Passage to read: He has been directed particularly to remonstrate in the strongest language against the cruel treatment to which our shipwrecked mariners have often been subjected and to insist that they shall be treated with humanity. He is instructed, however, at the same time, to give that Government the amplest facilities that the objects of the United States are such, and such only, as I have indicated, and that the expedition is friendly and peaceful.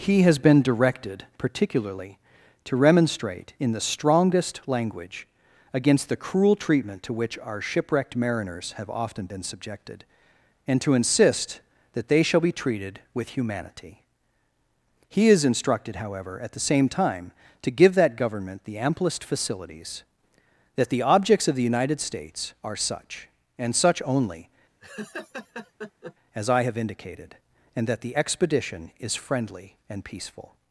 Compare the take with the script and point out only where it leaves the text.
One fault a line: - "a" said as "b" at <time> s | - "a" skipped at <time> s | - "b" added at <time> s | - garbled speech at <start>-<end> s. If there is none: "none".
none